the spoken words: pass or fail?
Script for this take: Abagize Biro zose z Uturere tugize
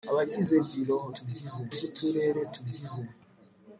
fail